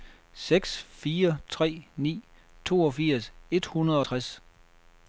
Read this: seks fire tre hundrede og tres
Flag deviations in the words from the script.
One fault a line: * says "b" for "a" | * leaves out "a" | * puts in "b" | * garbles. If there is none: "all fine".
* puts in "ni toogfirs et"